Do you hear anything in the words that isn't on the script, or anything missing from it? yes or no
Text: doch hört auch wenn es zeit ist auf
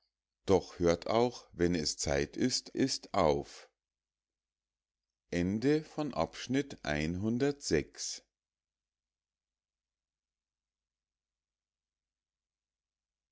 yes